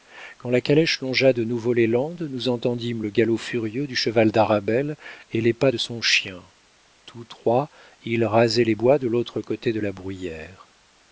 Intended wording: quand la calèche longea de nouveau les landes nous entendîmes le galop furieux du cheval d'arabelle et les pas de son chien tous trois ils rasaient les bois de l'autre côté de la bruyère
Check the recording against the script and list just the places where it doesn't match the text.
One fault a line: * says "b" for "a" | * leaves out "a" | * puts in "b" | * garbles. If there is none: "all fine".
all fine